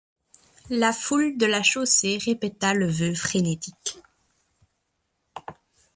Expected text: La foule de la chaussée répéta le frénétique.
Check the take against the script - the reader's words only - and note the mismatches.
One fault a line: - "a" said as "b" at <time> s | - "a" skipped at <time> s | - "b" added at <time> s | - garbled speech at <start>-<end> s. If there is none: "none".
- "vœu" added at 2.9 s